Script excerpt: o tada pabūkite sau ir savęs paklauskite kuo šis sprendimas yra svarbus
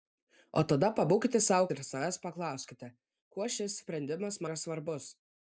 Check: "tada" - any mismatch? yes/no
no